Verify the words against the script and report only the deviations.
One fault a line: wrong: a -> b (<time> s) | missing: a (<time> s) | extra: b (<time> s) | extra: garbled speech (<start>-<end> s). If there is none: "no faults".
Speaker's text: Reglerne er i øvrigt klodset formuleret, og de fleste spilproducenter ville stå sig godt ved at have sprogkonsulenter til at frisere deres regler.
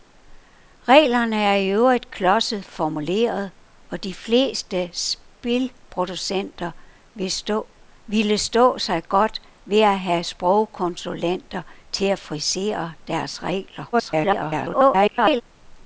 extra: garbled speech (13.9-15.4 s)